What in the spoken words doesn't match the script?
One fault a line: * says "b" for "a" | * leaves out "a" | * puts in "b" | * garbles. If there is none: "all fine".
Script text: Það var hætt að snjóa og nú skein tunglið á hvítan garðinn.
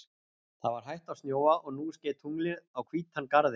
all fine